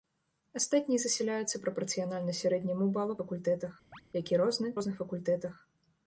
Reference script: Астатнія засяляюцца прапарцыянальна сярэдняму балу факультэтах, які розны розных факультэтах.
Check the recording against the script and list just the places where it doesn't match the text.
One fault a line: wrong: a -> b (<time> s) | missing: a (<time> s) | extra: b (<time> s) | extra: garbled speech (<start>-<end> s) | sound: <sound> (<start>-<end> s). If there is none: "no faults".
sound: chirp (3.9-4.0 s)